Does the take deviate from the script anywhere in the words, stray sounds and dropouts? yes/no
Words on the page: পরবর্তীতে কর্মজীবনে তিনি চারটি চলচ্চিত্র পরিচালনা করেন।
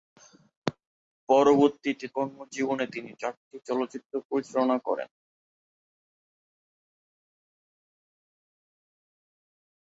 no